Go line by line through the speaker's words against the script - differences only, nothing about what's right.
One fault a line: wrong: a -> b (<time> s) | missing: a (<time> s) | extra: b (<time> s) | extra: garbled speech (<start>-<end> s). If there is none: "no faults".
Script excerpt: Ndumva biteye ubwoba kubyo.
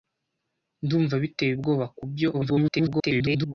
extra: garbled speech (2.3-3.5 s)